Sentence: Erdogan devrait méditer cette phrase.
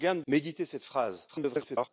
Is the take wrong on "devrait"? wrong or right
wrong